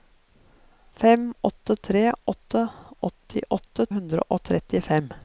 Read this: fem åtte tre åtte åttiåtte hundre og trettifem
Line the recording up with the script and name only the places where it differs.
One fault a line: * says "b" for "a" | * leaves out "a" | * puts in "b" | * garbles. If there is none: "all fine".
all fine